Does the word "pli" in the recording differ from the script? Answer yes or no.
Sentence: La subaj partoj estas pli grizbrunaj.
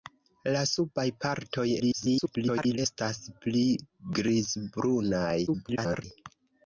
no